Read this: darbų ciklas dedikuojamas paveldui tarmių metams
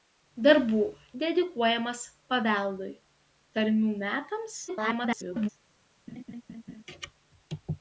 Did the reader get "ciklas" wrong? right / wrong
wrong